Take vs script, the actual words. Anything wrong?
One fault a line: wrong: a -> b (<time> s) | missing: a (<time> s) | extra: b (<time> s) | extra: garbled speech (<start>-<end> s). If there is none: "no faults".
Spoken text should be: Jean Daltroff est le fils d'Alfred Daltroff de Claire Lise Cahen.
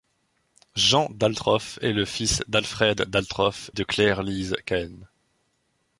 no faults